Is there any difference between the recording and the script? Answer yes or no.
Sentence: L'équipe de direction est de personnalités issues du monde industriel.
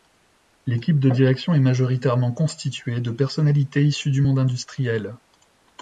yes